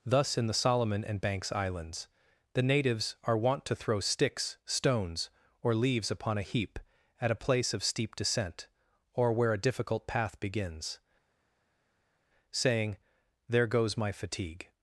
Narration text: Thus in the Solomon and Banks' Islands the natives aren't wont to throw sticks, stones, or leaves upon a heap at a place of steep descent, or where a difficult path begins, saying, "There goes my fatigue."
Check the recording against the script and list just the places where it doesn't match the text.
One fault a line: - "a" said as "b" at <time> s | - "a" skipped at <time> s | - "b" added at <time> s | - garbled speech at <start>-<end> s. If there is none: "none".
- "aren't" said as "are" at 3.2 s